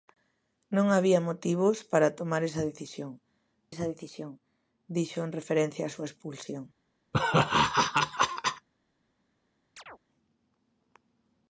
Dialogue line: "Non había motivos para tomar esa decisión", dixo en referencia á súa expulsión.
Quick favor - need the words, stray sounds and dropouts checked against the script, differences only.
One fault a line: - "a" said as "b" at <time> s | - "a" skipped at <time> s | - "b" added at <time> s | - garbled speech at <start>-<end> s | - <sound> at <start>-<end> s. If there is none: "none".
- "esa decisión" added at 3.7 s
- laugh at 7.1-8.7 s
- chirp at 9.8-10.0 s